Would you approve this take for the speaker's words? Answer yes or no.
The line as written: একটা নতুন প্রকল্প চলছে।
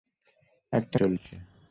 no